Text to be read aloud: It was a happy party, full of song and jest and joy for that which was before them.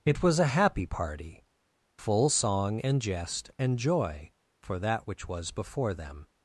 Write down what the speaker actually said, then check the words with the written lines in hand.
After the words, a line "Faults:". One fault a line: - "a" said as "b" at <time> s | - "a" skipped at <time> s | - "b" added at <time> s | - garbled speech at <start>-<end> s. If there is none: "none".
It was a happy party, full song and jest and joy for that which was before them.
Faults:
- "of" skipped at 2.3 s